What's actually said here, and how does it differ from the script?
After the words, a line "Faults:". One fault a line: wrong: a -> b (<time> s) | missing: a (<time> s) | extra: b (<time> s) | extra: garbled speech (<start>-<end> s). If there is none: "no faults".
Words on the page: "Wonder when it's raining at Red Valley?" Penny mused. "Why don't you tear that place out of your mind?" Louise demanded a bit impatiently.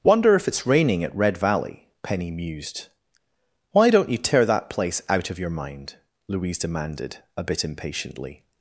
"Wonder if it's raining at Red Valley?" Penny mused. "Why don't you tear that place out of your mind?" Louise demanded a bit impatiently.
Faults:
wrong: when -> if (0.3 s)